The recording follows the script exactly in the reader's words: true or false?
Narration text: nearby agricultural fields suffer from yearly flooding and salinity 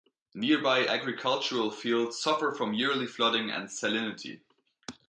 true